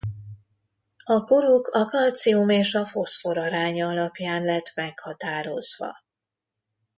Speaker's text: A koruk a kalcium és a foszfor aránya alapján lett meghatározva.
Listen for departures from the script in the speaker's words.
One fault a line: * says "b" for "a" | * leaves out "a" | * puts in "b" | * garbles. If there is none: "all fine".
all fine